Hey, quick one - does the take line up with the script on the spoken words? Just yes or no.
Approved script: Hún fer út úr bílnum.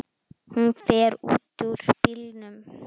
yes